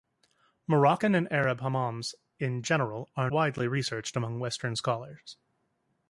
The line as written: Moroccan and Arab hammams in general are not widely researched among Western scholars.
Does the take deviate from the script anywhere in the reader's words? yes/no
yes